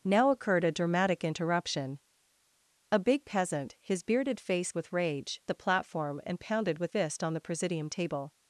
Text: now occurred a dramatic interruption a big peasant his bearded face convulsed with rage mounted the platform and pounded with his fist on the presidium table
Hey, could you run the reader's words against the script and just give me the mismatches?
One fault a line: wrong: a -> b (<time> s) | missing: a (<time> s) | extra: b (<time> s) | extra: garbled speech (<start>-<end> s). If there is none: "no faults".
missing: convulsed (4.7 s)
missing: mounted (5.4 s)
missing: his (6.9 s)